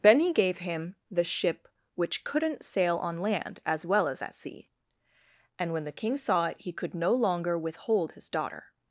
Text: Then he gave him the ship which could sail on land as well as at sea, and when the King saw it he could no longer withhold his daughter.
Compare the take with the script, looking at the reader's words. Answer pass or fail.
fail